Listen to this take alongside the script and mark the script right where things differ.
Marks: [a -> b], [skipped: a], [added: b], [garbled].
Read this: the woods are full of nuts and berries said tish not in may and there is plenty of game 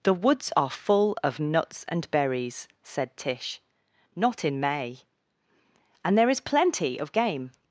the woods are full of nuts and berries said tish not in may and there is plenty of game